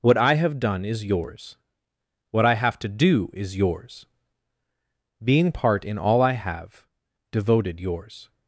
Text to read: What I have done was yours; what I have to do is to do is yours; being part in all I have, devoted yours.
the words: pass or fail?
fail